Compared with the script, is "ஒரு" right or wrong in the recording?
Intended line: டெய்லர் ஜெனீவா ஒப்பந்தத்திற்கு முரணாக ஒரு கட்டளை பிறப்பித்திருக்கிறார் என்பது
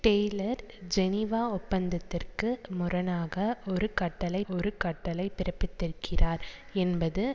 right